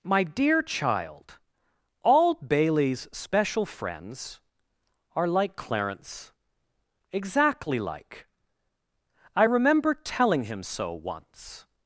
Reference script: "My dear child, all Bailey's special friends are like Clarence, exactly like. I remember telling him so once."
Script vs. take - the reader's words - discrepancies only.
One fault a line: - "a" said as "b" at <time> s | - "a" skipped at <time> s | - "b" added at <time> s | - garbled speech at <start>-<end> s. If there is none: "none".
none